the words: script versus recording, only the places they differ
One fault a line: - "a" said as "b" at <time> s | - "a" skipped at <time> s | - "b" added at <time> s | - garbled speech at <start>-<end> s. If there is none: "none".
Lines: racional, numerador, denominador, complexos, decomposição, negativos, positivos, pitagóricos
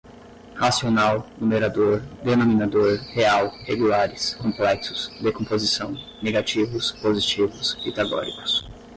- "real regulares" added at 3.1 s